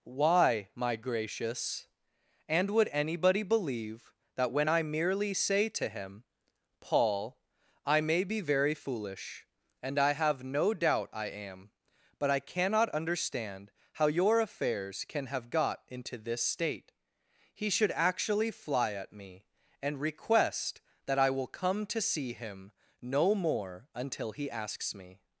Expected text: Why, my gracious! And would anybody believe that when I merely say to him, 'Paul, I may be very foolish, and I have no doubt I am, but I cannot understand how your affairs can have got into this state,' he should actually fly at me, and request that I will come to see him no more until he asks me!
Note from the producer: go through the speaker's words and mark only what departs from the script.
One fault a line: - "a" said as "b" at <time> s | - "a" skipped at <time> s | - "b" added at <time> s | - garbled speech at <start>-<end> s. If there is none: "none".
none